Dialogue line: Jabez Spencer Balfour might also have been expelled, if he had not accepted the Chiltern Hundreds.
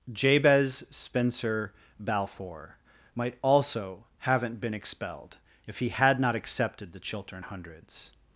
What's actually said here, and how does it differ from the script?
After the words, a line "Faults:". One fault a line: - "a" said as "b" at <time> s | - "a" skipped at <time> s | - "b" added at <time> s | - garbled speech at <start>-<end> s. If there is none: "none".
Jabez Spencer Balfour might also haven't been expelled, if he had not accepted the Chiltern Hundreds.
Faults:
- "have" said as "haven't" at 4.2 s